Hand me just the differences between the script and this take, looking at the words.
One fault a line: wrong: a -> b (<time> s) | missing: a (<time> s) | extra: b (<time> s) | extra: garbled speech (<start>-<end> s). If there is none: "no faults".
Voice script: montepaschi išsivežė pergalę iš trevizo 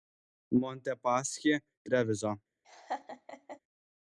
missing: išsivežė pergalę iš (1.5 s)